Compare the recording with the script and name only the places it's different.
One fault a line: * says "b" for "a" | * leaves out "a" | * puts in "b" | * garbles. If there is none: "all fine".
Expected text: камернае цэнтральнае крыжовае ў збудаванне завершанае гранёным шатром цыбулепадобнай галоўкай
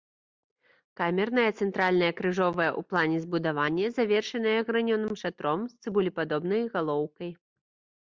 * puts in "плане"
* puts in "з"